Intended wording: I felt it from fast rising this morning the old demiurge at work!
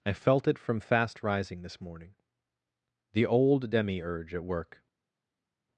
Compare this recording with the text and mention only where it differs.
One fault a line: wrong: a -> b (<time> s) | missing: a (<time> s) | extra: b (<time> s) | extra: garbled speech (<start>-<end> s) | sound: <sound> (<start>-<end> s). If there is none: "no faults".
no faults